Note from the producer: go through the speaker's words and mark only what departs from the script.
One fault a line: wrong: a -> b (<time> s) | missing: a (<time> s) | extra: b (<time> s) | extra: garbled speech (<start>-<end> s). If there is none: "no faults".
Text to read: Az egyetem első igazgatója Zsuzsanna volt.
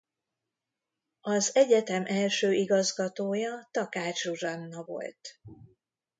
extra: Takács (3.7 s)